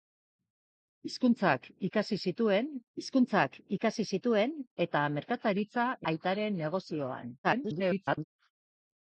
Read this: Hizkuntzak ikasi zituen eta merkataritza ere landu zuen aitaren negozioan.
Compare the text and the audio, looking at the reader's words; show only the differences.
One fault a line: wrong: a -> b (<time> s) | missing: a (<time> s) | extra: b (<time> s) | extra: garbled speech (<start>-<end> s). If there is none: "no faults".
wrong: eta merkataritza ere landu zuen -> hizkuntzak ikasi zituen eta merkataritza (3.0 s)
extra: garbled speech (7.4-8.2 s)